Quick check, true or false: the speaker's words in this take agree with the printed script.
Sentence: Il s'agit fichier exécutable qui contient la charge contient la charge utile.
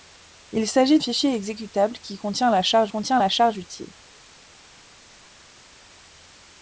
true